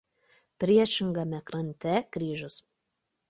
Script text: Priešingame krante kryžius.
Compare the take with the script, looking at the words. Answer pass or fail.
pass